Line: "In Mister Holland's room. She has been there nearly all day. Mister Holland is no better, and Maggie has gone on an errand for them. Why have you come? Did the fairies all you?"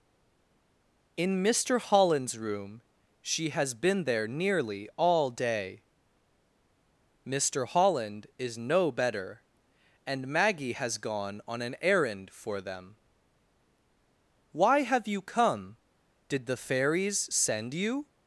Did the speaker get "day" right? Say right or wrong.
right